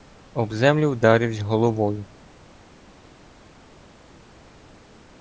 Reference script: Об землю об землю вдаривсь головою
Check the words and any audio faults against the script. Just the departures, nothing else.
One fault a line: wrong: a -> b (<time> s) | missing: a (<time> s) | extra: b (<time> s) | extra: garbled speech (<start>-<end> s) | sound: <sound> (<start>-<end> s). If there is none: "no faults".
missing: об землю (0.9 s)